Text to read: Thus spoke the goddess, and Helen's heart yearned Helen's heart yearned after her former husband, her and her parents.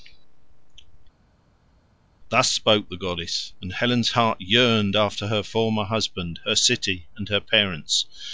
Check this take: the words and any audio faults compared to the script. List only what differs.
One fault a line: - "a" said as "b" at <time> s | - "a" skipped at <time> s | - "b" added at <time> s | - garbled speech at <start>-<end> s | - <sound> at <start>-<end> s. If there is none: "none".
- "Helen's heart yearned" skipped at 5.0 s
- "city" added at 6.6 s